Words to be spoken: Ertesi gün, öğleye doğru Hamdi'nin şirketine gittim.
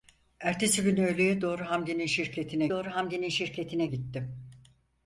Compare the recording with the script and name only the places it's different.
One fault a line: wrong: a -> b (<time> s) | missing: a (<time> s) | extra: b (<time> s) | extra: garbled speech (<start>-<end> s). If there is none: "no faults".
extra: doğru Hamdi'nin şirketine (2.7 s)